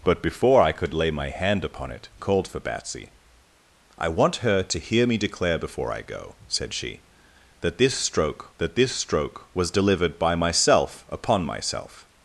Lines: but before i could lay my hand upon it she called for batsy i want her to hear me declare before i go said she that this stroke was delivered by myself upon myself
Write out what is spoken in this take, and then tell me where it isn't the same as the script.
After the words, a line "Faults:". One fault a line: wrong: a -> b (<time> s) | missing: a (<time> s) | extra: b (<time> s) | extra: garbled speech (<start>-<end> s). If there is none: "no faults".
but before i could lay my hand upon it called for batsy i want her to hear me declare before i go said she that this stroke that this stroke was delivered by myself upon myself
Faults:
missing: she (2.1 s)
extra: that this stroke (8.6 s)